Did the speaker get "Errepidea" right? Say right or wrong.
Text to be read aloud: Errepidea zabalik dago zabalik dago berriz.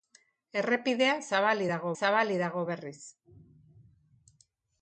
right